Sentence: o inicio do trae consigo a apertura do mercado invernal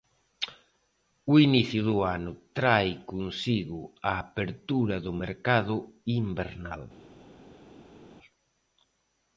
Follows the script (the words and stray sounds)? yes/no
no